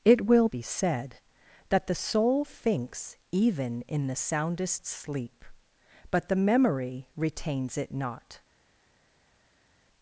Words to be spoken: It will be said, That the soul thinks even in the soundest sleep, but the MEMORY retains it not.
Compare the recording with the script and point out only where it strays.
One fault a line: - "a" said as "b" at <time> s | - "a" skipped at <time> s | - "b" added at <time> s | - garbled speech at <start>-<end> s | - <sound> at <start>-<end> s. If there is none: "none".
none